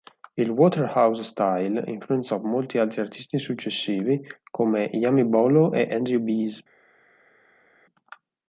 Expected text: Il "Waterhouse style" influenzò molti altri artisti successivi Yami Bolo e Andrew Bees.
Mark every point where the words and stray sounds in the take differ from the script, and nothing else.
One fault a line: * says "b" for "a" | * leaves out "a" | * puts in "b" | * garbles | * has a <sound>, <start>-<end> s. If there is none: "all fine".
* puts in "come"